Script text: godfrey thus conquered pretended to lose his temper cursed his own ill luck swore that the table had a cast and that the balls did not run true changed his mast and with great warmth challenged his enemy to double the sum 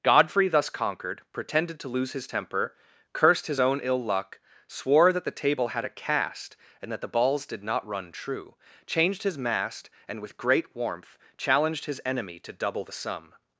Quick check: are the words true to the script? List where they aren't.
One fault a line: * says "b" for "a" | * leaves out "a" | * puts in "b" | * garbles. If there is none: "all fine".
all fine